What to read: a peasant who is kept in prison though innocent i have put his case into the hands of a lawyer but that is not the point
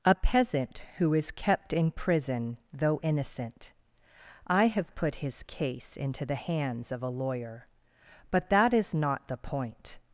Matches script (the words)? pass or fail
pass